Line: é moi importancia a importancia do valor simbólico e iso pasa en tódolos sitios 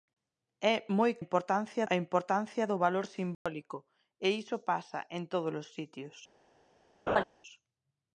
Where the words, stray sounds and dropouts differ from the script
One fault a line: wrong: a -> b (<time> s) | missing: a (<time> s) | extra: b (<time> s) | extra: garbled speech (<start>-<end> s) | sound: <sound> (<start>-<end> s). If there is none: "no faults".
sound: dropout (3.3-3.5 s)
sound: laugh (7.1-7.2 s)